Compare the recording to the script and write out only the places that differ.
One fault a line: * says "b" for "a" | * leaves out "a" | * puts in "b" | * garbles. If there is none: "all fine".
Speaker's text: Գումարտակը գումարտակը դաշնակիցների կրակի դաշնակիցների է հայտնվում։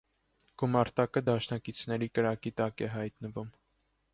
* leaves out "գումարտակը"
* says "տակ" for "դաշնակիցների"